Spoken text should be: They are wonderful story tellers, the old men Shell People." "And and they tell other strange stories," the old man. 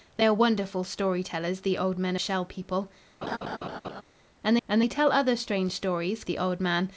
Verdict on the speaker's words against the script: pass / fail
pass